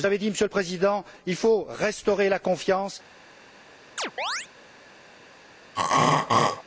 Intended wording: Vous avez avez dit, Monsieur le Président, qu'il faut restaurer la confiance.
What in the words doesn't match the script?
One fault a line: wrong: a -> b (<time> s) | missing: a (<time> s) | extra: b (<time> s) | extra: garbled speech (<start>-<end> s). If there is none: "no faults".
missing: avez (0.2 s)